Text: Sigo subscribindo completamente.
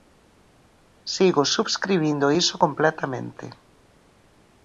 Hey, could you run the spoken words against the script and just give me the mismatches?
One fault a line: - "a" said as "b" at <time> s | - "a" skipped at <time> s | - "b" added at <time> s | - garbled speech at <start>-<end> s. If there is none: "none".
- "iso" added at 2.3 s